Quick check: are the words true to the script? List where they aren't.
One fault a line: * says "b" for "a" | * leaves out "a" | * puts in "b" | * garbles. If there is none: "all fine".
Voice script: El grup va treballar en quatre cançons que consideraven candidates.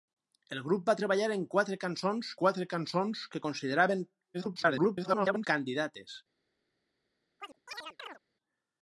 * puts in "quatre cançons"
* garbles